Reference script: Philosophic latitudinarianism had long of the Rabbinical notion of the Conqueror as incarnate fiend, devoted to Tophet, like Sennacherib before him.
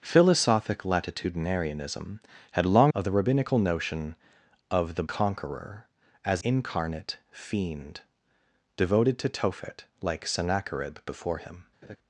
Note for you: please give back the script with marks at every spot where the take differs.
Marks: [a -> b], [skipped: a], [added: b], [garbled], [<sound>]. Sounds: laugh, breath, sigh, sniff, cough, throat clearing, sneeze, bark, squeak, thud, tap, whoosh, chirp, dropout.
Philosophic latitudinarianism had long of the Rabbinical notion of the Conqueror as incarnate fiend, devoted to Tophet, like Sennacherib before him. [laugh]